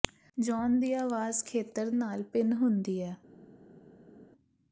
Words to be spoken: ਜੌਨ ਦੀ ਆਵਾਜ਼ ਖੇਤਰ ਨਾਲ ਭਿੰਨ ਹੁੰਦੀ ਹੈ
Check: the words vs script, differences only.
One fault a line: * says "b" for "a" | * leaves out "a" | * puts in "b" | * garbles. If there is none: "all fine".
all fine